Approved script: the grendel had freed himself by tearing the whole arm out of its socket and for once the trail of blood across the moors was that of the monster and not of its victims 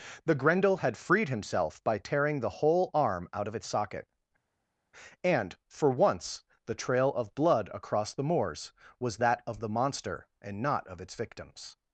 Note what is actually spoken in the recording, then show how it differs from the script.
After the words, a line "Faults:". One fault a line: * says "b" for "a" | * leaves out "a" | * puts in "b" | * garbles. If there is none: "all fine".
the grendel had freed himself by tearing the whole arm out of its socket and for once the trail of blood across the moors was that of the monster and not of its victims
Faults:
all fine